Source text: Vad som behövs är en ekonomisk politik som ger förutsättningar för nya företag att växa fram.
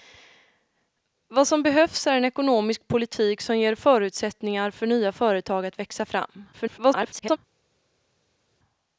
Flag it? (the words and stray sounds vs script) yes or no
yes